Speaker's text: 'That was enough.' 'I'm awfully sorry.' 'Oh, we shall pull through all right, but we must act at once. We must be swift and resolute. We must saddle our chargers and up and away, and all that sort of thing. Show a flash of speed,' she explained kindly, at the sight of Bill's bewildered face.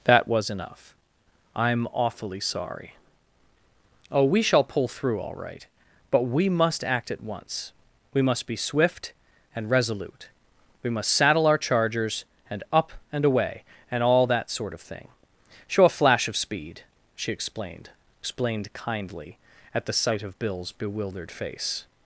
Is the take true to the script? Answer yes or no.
no